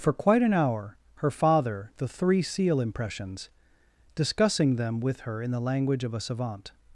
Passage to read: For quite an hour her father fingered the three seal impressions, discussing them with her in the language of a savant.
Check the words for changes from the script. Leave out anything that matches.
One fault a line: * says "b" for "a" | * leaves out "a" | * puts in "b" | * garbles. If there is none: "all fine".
* leaves out "fingered"